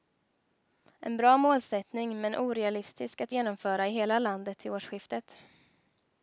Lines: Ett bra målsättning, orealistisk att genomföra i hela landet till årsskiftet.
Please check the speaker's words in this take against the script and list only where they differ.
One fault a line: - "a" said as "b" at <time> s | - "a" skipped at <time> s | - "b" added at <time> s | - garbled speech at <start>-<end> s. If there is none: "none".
- "Ett" said as "En" at 1.0 s
- "men" added at 2.2 s